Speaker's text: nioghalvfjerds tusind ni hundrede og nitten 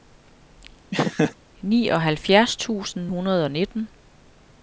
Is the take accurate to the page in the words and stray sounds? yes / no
no